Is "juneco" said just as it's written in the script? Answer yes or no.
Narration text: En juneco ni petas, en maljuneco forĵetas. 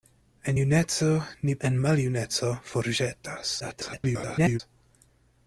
yes